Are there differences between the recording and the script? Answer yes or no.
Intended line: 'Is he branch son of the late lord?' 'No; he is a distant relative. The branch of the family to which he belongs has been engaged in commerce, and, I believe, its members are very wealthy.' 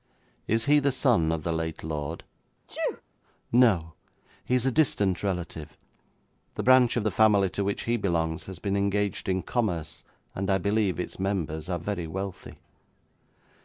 yes